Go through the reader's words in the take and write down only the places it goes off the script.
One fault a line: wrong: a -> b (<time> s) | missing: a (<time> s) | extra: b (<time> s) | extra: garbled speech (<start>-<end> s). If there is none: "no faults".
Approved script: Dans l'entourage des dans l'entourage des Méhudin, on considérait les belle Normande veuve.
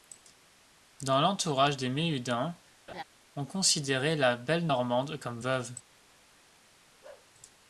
missing: dans l'entourage des (1.9 s)
wrong: les -> la (4.2 s)
extra: comme (5.2 s)